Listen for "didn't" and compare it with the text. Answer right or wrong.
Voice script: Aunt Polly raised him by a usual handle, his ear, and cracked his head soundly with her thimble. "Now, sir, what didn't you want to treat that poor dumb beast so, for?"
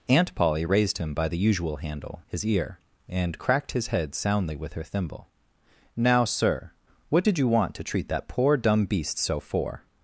wrong